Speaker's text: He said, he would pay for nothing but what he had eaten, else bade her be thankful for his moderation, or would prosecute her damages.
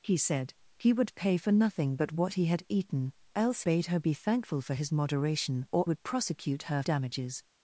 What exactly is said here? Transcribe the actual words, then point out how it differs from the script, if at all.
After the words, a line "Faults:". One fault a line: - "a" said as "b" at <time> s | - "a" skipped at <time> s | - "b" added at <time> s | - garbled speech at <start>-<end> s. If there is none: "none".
He said, he would pay for nothing but what he had eaten, else bade her be thankful for his moderation, or would prosecute her damages.
Faults:
none